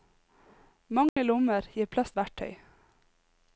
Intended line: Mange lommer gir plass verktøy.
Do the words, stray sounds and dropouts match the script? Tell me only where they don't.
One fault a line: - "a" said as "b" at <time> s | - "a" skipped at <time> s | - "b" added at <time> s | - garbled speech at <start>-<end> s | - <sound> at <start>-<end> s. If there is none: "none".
- dropout at 1.1-1.2 s